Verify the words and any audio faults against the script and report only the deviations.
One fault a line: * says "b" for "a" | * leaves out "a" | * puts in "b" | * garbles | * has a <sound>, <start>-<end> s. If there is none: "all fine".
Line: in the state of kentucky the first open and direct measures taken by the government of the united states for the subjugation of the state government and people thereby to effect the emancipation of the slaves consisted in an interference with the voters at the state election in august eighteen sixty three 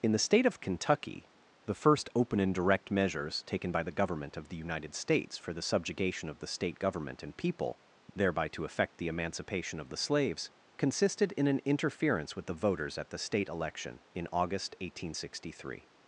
all fine